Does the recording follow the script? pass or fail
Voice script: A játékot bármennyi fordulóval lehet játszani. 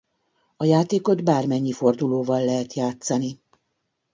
pass